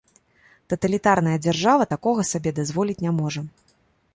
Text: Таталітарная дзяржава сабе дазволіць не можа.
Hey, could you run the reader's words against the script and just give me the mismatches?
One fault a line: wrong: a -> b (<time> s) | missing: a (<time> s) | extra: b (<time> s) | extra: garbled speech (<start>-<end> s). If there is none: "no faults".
extra: такога (1.9 s)